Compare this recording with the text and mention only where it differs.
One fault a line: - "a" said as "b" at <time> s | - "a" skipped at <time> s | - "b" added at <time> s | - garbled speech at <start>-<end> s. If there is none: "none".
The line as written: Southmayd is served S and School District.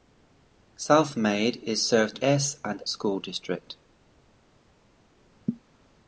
none